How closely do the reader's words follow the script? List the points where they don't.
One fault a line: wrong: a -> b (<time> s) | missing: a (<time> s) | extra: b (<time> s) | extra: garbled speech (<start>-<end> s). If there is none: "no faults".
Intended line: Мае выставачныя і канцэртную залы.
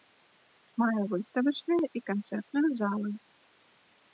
no faults